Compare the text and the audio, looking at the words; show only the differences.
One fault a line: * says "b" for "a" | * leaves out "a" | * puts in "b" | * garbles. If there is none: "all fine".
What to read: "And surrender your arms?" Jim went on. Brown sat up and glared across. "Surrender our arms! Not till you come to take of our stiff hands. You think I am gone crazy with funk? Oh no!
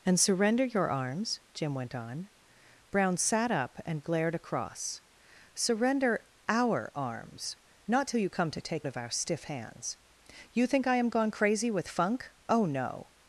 all fine